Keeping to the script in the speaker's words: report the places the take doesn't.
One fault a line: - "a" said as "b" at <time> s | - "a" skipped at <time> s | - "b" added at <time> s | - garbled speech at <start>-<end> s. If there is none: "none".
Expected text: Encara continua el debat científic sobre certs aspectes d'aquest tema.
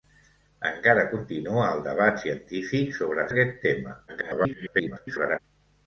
- "certs aspectes" skipped at 3.3 s
- garbled speech at 4.1-5.4 s